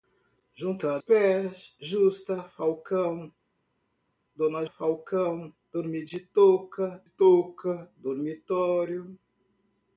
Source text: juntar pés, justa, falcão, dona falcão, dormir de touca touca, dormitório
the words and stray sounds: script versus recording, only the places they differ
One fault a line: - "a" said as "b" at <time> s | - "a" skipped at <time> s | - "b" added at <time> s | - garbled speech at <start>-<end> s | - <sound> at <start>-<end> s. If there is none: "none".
none